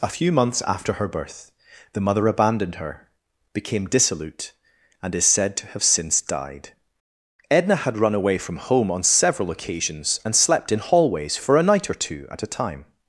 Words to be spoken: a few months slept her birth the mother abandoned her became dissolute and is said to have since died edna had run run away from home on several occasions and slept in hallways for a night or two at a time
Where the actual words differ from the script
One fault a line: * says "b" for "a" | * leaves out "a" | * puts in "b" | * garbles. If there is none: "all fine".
* says "after" for "slept"
* leaves out "run"